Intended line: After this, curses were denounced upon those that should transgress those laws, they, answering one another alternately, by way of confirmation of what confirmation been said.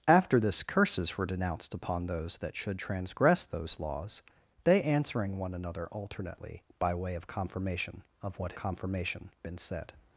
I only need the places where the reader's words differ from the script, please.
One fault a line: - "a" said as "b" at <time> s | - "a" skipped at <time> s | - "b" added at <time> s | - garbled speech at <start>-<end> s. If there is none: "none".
none